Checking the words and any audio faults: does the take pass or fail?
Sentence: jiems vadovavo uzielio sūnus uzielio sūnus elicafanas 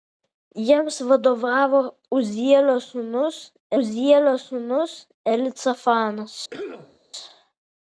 fail